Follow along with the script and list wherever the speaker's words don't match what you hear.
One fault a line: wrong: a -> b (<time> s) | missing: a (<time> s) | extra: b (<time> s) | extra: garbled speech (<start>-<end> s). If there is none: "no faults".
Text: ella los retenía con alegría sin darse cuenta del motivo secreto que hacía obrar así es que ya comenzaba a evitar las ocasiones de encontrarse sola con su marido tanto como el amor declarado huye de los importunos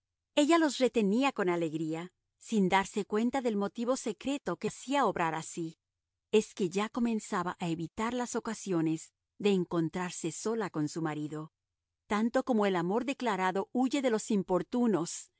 no faults